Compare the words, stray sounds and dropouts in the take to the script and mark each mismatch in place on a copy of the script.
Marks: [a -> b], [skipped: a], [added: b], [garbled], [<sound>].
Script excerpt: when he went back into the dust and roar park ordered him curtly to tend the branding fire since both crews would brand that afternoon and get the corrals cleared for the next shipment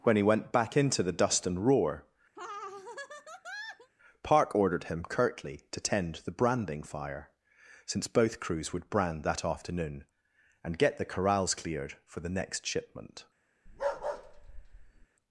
when he went back into the dust and roar [laugh] park ordered him curtly to tend the branding fire since both crews would brand that afternoon and get the corrals cleared for the next shipment [bark]